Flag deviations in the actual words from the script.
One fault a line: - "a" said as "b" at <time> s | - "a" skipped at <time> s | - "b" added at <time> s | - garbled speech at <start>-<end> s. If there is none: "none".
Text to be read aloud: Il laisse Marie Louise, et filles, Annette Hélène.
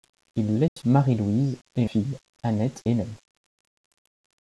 none